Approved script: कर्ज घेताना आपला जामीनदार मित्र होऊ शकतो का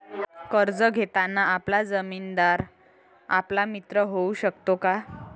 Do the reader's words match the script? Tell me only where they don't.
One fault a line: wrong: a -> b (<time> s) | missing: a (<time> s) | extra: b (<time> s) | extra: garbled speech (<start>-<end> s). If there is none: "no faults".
extra: आपला (3.3 s)